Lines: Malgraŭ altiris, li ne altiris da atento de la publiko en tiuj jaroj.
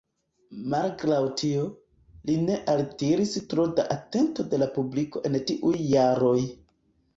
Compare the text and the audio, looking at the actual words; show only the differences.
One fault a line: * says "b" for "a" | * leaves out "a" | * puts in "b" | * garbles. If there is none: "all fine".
* says "tio" for "altiris"
* puts in "tro"